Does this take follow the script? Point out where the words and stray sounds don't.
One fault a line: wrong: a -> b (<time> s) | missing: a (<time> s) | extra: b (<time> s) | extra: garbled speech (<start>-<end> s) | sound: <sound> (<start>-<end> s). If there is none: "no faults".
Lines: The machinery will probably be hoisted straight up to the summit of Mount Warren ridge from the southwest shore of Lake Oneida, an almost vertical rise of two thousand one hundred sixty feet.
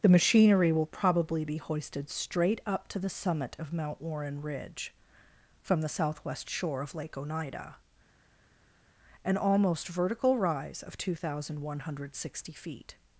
no faults